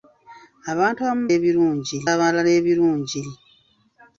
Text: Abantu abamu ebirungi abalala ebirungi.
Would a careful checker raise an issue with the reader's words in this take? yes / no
no